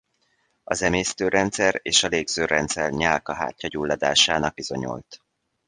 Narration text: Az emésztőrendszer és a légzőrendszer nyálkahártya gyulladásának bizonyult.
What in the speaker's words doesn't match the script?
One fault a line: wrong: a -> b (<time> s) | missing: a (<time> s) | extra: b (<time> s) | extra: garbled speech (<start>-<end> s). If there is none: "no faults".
no faults